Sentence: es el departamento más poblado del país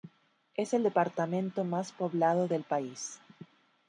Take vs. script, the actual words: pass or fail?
pass